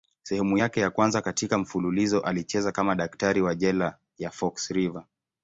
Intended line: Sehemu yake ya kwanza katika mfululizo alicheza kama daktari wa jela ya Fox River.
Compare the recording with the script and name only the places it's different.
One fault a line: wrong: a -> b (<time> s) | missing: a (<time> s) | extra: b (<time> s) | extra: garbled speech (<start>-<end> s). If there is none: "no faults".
no faults